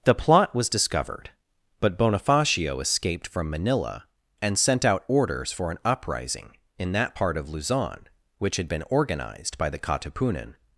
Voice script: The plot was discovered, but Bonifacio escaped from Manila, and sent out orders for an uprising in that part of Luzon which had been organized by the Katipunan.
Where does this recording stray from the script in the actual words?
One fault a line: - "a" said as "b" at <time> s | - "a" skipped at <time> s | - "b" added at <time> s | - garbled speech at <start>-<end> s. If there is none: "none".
none